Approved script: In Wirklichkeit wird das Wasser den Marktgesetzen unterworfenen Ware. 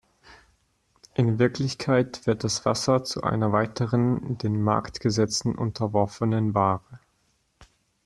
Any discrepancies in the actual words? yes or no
yes